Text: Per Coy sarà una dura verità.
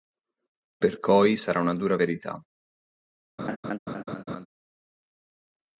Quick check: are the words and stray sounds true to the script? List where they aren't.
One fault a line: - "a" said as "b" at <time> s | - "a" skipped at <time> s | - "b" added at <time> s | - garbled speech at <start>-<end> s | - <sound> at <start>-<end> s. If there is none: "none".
- laugh at 3.4-4.5 s